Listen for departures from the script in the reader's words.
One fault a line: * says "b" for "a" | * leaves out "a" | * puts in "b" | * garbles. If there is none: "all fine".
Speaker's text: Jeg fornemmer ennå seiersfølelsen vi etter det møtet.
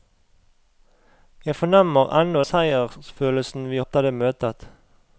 all fine